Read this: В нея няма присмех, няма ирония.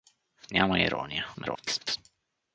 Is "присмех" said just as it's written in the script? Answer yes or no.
no